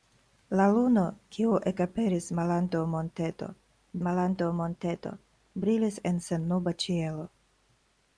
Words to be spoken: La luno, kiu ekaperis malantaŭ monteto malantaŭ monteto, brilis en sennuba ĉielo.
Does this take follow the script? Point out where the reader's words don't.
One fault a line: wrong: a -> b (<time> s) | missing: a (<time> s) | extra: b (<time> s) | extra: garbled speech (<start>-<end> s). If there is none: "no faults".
no faults